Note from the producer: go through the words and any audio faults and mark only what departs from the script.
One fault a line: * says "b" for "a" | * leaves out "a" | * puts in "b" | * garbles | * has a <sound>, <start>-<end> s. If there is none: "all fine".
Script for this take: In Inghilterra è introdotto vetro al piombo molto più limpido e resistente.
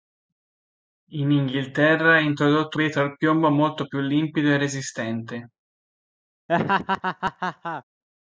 * has a laugh, 6.5-7.8 s